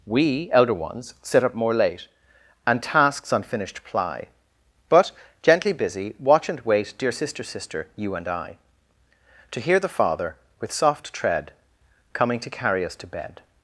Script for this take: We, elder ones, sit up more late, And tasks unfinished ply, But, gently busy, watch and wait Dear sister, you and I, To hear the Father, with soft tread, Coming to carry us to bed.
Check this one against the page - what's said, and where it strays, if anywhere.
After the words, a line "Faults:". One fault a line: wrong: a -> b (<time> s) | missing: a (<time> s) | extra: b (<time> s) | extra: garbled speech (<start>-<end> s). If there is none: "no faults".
We, elder ones, sit up more late, And tasks unfinished ply, But, gently busy, watch and wait Dear sister sister, you and I, To hear the Father, with soft tread, Coming to carry us to bed.
Faults:
extra: sister (7.4 s)